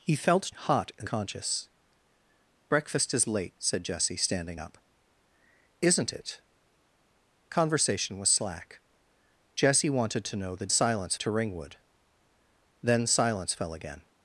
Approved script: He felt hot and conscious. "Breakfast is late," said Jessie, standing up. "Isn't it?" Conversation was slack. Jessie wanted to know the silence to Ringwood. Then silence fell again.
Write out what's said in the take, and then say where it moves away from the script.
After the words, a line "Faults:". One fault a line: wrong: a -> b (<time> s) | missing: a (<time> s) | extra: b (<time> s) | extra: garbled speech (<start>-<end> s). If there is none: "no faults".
He felt hot and conscious. "Breakfast is late," said Jessie, standing up. "Isn't it?" Conversation was slack. Jessie wanted to know the silence to Ringwood. Then silence fell again.
Faults:
no faults